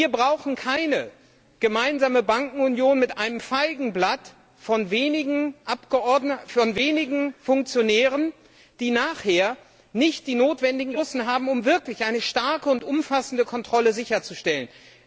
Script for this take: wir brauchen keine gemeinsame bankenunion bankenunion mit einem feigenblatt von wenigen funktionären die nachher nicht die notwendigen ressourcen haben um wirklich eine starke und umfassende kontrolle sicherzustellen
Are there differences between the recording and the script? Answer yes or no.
yes